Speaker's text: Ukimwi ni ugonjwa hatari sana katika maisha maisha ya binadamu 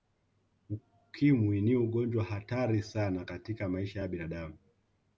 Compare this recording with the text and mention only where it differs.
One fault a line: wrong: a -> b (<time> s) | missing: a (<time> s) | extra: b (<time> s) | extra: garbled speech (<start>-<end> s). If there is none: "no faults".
missing: maisha (4.0 s)